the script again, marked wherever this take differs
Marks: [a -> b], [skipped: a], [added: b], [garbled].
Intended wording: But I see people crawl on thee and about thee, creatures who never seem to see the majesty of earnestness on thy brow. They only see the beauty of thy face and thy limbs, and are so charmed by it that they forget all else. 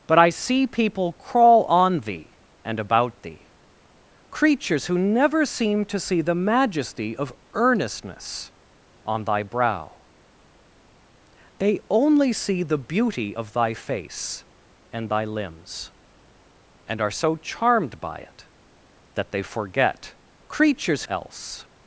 But I see people crawl on thee and about thee, creatures who never seem to see the majesty of earnestness on thy brow. They only see the beauty of thy face and thy limbs, and are so charmed by it that they forget [all -> creatures] else.